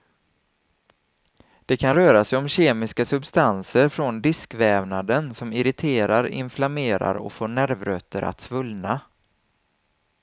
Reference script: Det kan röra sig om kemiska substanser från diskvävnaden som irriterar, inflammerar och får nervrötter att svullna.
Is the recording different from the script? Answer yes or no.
no